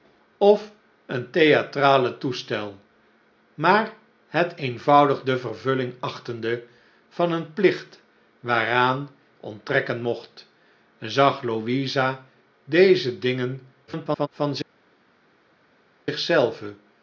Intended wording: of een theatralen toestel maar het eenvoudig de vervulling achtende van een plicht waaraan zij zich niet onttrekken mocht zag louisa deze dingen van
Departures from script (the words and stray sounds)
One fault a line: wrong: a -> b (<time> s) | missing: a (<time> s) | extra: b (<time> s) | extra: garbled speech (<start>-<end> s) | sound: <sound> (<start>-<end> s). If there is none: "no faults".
missing: zij zich niet (9.1 s)
extra: garbled speech (13.9-14.3 s)